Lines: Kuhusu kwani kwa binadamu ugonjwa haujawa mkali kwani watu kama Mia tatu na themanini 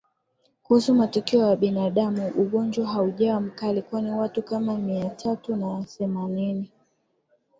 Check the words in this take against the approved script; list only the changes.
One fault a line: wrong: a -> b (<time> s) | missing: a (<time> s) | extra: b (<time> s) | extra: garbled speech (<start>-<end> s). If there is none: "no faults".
wrong: kwani -> matukio (0.9 s)